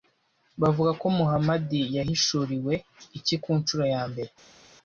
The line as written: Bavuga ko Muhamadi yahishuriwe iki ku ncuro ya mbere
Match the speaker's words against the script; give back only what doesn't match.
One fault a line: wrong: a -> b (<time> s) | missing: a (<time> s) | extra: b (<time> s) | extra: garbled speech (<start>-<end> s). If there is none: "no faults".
no faults